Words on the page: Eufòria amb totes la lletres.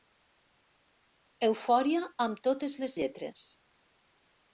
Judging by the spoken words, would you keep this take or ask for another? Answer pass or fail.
fail